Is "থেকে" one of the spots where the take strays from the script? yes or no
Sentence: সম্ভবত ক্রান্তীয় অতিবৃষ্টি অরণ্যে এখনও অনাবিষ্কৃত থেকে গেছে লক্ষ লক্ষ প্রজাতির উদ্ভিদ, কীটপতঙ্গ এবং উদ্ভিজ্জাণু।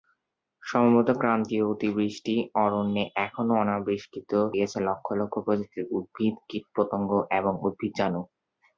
yes